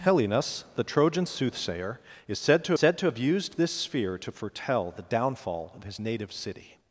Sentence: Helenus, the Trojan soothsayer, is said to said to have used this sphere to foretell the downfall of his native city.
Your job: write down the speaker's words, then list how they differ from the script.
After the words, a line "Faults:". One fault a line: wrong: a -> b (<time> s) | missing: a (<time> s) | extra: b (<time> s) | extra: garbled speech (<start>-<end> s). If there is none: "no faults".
Helenus, the Trojan soothsayer, is said to said to have used this sphere to foretell the downfall of his native city.
Faults:
no faults